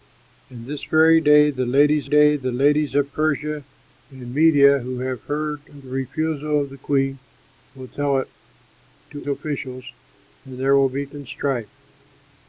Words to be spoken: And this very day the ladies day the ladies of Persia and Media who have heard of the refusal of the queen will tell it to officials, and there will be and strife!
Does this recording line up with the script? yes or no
yes